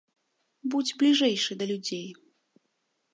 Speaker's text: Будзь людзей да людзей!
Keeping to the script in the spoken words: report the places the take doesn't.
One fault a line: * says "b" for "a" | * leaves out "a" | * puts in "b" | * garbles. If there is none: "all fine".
* says "бліжэйшы" for "людзей"